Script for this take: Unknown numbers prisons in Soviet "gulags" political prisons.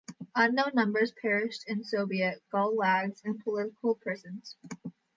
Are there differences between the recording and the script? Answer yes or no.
yes